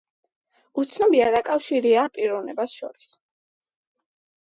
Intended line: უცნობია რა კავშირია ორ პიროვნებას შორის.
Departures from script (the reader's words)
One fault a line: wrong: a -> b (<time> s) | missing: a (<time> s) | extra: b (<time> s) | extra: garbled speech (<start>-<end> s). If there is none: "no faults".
no faults